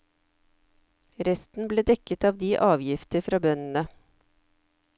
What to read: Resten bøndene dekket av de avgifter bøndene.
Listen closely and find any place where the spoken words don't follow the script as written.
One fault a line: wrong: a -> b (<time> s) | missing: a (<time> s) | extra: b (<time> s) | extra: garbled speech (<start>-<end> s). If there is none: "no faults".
wrong: bøndene -> ble (1.7 s)
extra: fra (3.3 s)